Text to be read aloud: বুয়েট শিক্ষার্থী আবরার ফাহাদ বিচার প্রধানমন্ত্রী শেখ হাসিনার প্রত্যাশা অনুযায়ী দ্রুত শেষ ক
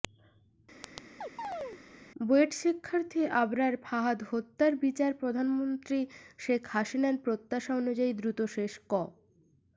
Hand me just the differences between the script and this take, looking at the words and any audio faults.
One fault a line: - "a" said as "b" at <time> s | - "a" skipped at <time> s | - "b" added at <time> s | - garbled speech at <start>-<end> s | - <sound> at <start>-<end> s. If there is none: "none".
- chirp at 0.8-1.8 s
- "হত্যার" added at 4.3 s